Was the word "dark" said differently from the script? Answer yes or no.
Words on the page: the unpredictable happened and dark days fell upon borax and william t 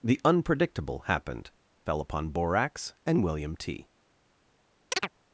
yes